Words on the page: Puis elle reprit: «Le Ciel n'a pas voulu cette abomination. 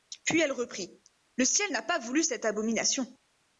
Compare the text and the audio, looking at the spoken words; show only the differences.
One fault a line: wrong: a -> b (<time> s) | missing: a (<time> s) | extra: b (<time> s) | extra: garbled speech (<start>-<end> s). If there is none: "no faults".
no faults